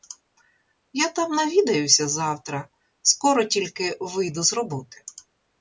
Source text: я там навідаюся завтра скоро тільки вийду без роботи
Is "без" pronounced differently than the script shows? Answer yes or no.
yes